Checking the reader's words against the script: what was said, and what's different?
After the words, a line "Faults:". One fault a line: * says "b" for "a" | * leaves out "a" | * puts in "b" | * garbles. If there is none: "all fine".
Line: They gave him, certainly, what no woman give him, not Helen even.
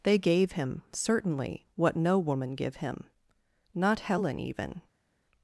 They gave him, certainly, what no woman give him, not Helen even.
Faults:
all fine